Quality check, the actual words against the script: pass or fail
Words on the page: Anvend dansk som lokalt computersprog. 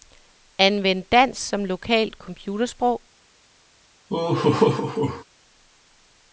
pass